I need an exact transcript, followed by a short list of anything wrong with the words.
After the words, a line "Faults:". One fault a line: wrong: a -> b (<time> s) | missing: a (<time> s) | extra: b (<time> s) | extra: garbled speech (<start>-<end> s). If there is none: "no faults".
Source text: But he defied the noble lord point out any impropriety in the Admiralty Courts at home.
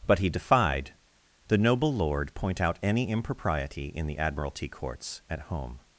But he defied the noble lord point out any impropriety in the Admiralty Courts at home.
Faults:
no faults